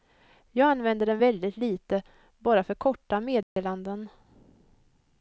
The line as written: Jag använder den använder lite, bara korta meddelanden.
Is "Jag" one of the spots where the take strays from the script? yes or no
no